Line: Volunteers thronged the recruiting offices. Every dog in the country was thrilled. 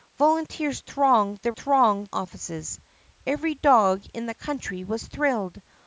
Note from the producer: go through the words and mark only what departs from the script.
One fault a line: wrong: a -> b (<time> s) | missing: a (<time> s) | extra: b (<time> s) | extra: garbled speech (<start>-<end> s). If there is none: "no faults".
wrong: recruiting -> thronged (1.5 s)